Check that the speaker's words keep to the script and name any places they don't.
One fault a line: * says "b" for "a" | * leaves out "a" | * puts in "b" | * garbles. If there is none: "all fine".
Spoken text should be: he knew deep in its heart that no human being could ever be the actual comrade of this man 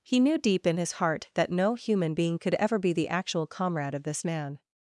* says "his" for "its"